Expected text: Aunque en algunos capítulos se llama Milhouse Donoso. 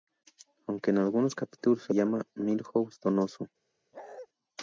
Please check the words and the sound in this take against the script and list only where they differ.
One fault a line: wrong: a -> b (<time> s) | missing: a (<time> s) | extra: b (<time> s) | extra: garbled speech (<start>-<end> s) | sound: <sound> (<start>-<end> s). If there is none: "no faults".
sound: bark (3.9-4.3 s)